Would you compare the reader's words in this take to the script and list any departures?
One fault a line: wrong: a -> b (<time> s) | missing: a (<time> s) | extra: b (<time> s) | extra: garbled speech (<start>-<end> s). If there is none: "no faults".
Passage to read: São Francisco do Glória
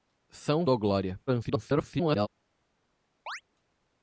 missing: Francisco (0.7 s)
extra: garbled speech (1.3-2.3 s)